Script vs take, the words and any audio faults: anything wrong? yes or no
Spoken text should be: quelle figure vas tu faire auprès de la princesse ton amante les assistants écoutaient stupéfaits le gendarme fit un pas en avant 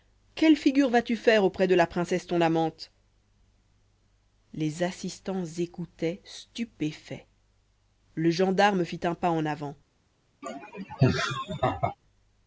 yes